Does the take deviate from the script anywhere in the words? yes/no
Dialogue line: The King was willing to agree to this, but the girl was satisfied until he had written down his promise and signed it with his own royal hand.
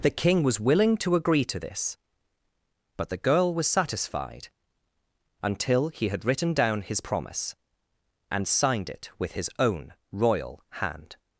no